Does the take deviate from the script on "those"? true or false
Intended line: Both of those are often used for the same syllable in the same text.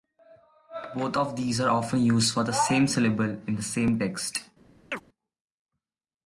true